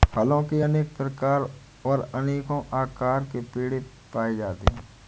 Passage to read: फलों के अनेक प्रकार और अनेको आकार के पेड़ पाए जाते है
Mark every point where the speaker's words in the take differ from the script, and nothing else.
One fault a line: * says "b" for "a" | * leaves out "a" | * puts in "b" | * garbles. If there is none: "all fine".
all fine